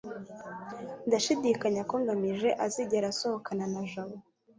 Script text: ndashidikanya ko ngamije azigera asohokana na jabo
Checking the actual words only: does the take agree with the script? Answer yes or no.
yes